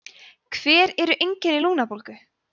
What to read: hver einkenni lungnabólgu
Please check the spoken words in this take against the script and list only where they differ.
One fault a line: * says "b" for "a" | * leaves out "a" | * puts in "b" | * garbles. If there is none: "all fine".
* puts in "eru"